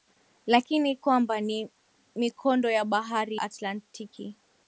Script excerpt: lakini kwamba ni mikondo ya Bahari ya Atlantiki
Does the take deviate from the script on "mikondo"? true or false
false